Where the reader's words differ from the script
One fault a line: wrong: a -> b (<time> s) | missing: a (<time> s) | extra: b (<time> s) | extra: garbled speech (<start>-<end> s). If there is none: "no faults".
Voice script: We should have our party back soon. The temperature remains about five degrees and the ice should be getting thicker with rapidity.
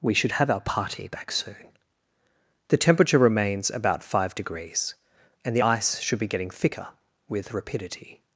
no faults